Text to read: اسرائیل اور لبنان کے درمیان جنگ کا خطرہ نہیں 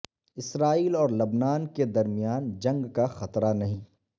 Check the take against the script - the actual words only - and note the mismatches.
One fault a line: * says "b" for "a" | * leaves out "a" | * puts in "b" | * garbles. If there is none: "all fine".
all fine